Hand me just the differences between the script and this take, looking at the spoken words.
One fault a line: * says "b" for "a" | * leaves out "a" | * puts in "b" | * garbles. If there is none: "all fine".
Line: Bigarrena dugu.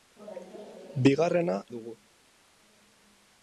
all fine